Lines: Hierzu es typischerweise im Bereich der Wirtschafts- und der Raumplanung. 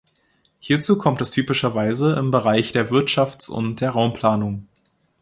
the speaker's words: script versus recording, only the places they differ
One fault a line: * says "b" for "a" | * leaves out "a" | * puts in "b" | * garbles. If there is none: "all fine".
* puts in "kommt"